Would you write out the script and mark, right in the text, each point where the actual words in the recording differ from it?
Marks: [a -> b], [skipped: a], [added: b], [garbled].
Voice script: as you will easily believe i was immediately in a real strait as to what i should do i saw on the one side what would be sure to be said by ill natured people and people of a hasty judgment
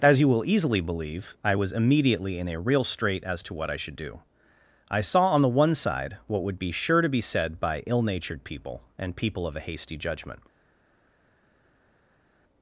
as you will easily believe i was immediately in a real strait as to what i should do i saw on the one side what would be sure to be said by ill natured people and people of a hasty judgment